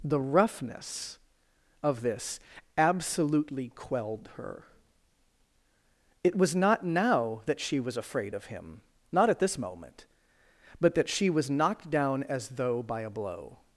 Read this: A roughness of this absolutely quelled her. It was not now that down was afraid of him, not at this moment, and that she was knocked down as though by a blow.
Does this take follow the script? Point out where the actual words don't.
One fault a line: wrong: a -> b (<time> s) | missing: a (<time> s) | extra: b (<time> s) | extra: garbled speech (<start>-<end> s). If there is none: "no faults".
wrong: A -> The (0.0 s)
wrong: down -> she (7.6 s)
wrong: and -> but (10.8 s)